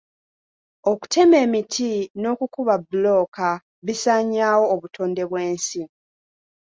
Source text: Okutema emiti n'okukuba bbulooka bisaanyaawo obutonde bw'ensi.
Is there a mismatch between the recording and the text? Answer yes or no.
no